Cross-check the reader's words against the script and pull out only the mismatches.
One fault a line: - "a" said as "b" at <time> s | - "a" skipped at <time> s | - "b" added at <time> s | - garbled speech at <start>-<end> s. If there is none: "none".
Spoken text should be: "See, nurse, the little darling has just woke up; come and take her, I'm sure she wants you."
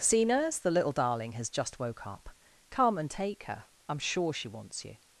none